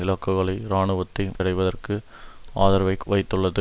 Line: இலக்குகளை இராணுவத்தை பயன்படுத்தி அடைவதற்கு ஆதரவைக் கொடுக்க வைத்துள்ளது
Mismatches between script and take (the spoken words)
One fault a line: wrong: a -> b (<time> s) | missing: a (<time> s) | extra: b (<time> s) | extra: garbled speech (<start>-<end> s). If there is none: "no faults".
missing: பயன்படுத்தி (1.2 s)
missing: கொடுக்க (3.0 s)